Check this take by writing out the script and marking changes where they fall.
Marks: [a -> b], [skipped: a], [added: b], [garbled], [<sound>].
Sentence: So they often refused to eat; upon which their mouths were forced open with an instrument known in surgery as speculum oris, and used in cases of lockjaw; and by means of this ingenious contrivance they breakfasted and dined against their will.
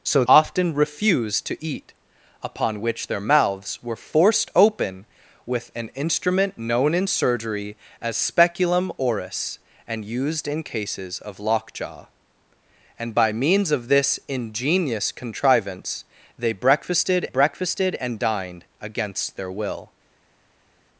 So [skipped: they] often refused to eat; upon which their mouths were forced open with an instrument known in surgery as speculum oris, and used in cases of lockjaw; and by means of this ingenious contrivance they breakfasted [added: breakfasted] and dined against their will.